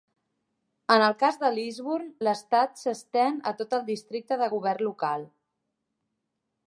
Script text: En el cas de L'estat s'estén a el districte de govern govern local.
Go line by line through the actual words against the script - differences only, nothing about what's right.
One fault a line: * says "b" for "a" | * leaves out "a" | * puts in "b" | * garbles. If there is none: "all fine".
* puts in "Lisburn"
* puts in "tot"
* leaves out "govern"